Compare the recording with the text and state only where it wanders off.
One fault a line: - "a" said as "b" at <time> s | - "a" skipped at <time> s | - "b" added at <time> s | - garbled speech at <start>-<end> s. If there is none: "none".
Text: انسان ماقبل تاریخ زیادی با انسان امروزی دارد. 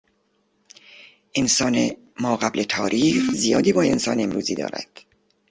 none